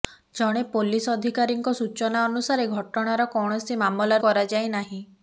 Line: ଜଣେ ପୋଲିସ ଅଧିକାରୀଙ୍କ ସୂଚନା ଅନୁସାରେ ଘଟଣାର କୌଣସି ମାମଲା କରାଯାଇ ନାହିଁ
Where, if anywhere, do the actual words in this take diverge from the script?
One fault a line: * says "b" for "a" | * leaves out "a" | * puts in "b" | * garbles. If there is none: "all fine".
all fine